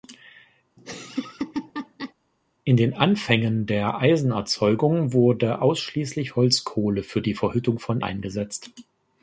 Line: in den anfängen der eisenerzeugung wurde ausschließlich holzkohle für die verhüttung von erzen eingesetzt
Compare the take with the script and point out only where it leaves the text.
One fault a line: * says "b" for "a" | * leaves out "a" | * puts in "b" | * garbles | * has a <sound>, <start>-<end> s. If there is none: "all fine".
* has a laugh, 0.8-2.1 s
* leaves out "erzen"